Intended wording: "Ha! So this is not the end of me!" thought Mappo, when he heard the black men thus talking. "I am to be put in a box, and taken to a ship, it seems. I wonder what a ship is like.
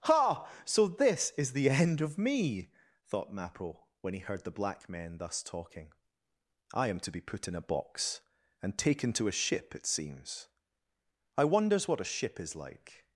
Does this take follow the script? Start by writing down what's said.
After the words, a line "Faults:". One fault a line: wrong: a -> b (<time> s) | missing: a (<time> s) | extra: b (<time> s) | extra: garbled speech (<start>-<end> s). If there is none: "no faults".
"Ha! So this is the end of me!" thought Mappo, when he heard the black men thus talking. "I am to be put in a box, and taken to a ship, it seems. I wonders what a ship is like.
Faults:
missing: not (1.5 s)
wrong: wonder -> wonders (11.4 s)